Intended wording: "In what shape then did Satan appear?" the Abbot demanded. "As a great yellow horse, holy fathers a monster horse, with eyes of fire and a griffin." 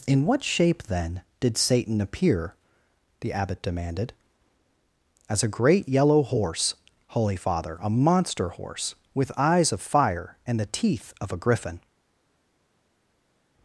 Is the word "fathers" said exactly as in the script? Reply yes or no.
no